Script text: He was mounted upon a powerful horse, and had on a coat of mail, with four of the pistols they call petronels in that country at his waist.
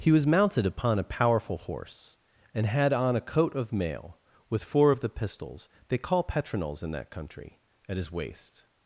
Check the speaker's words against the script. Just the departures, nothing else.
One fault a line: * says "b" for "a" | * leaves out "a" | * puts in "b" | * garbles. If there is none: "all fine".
all fine